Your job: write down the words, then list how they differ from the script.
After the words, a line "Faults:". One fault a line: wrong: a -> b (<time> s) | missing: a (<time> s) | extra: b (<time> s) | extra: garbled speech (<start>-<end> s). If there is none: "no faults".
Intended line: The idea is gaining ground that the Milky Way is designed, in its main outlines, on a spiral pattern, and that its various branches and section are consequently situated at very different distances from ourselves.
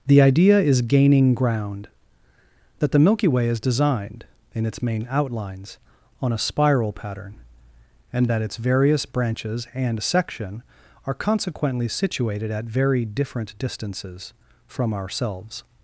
The idea is gaining ground that the Milky Way is designed, in its main outlines, on a spiral pattern, and that its various branches and section are consequently situated at very different distances from ourselves.
Faults:
no faults